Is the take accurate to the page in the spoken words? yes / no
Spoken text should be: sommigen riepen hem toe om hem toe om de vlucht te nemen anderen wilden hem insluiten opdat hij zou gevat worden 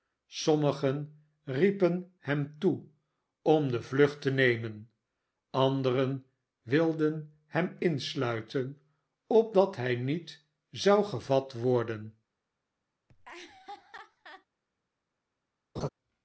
no